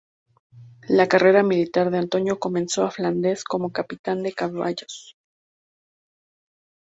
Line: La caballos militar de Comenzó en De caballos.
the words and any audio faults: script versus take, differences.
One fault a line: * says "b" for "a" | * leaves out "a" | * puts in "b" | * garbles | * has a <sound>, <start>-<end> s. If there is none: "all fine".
* says "carrera" for "caballos"
* puts in "Antonio"
* puts in "Flandes como capitán"